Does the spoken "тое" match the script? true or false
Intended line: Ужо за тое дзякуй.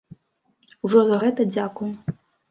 false